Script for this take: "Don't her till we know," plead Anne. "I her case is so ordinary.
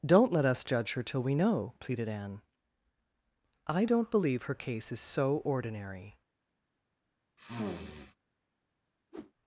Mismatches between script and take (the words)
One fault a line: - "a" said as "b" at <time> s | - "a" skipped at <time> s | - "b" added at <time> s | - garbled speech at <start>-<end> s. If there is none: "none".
- "let us judge" added at 0.3 s
- "plead" said as "pleaded" at 1.8 s
- "don't believe" added at 3.8 s